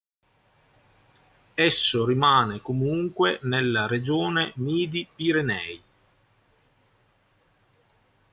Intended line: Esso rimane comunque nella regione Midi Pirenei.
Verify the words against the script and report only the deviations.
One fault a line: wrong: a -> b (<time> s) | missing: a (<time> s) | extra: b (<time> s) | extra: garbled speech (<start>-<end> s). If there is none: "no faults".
no faults